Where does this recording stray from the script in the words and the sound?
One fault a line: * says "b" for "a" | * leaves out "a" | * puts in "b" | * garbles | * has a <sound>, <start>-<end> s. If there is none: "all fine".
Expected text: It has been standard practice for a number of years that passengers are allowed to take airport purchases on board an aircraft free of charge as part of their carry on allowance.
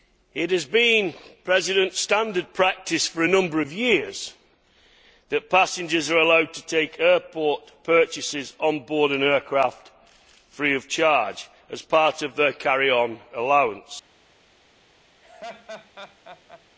* has a laugh, 15.2-16.6 s